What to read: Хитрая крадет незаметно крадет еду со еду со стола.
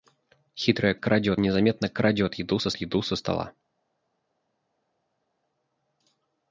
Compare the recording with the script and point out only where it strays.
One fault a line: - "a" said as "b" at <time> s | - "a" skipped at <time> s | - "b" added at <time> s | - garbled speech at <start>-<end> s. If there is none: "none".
none